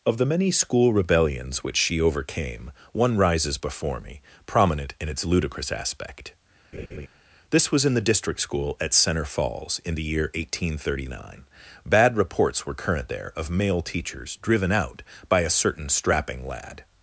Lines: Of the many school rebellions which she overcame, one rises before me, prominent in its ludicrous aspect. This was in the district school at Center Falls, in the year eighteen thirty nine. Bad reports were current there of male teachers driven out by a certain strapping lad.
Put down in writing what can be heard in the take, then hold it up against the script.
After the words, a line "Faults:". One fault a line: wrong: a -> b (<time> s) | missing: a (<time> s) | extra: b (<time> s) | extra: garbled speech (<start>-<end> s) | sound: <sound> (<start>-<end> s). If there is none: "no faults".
Of the many school rebellions which she overcame, one rises before me, prominent in its ludicrous aspect. This was in the district school at Center Falls, in the year eighteen thirty nine. Bad reports were current there of male teachers driven out by a certain strapping lad.
Faults:
sound: laugh (6.7-7.1 s)